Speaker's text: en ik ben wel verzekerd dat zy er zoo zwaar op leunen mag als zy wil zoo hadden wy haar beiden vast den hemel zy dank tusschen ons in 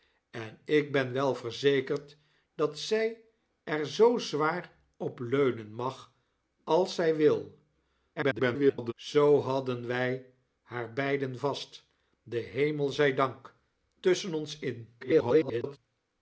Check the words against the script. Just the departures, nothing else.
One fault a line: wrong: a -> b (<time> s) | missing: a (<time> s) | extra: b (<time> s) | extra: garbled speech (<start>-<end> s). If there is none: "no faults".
extra: garbled speech (8.2-8.9 s)
extra: garbled speech (15.0-15.8 s)